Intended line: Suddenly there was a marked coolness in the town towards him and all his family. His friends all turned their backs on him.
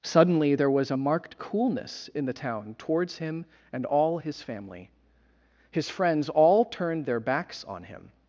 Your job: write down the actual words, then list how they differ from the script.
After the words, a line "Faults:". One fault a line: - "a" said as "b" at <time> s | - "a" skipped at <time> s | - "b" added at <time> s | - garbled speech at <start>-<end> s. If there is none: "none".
Suddenly there was a marked coolness in the town towards him and all his family. His friends all turned their backs on him.
Faults:
none